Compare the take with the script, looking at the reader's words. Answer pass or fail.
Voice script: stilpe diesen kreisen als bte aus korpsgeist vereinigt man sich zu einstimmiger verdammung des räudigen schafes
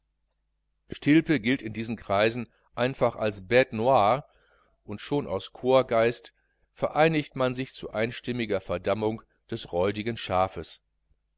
fail